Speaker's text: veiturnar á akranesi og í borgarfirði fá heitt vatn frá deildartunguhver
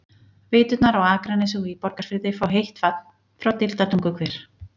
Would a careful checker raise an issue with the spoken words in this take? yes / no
no